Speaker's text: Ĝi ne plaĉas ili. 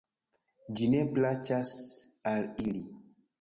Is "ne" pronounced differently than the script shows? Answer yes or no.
no